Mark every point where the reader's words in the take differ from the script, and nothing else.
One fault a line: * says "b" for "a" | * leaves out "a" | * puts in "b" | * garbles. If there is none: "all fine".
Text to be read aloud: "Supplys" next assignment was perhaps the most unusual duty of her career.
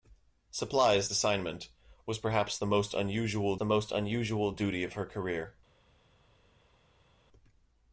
* leaves out "next"
* puts in "the most unusual"